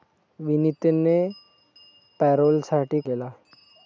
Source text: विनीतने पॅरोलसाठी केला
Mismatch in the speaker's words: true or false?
false